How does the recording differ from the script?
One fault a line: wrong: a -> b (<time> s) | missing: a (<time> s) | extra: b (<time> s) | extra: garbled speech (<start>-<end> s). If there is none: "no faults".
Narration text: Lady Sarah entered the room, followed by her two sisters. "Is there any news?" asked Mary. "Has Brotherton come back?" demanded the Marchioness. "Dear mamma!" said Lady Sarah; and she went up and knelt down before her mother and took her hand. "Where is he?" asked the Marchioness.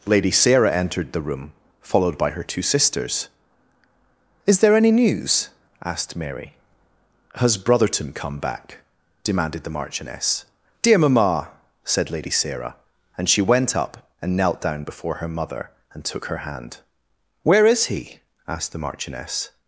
no faults